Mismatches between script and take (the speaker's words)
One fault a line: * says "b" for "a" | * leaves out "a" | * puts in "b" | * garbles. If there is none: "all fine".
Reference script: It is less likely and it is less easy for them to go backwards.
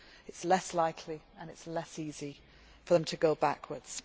all fine